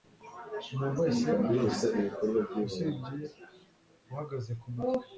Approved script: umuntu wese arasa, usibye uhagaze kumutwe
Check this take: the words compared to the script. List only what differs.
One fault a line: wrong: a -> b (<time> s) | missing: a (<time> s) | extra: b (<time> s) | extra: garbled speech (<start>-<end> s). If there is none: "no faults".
no faults